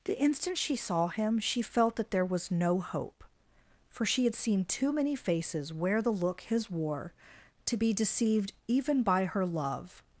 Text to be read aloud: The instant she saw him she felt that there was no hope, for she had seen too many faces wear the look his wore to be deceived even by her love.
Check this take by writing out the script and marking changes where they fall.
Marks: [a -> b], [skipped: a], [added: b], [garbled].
The instant she saw him she felt that there was no hope, for she had seen too many faces wear the look his wore to be deceived even by her love.